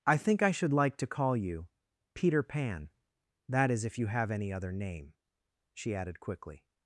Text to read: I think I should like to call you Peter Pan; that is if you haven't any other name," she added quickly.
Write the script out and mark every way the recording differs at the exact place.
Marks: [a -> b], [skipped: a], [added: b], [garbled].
I think I should like to call you Peter Pan; that is if you [haven't -> have] any other name," she added quickly.